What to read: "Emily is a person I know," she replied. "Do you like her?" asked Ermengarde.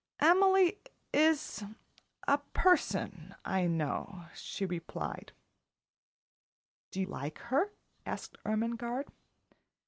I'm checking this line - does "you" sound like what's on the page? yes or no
no